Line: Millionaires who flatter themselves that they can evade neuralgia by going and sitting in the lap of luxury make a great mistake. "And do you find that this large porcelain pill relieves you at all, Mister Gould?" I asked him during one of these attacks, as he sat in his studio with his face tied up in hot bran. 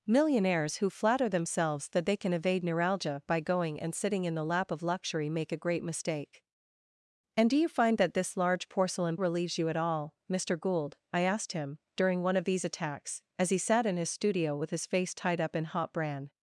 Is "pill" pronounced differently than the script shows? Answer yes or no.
yes